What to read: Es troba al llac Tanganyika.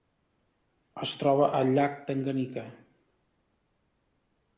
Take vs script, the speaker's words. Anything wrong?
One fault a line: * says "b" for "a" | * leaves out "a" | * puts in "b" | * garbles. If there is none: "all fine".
all fine